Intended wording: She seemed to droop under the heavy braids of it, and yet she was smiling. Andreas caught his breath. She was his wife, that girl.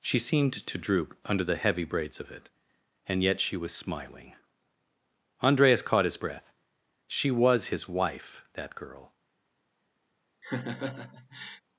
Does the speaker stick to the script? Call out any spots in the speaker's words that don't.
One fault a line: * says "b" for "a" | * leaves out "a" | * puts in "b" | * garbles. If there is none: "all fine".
all fine